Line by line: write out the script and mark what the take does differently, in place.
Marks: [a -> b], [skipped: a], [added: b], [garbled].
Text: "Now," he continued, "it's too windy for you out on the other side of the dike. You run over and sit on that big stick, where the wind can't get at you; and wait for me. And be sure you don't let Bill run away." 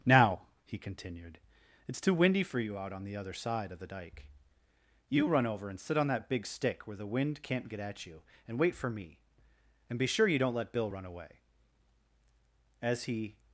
"Now," he continued, "it's too windy for you out on the other side of the dike. You run over and sit on that big stick, where the wind can't get at you; and wait for me. And be sure you don't let Bill run away." [added: As he]